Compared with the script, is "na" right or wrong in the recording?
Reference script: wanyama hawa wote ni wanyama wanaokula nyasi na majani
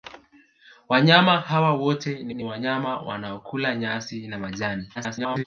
right